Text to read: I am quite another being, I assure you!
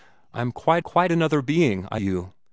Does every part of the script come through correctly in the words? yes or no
no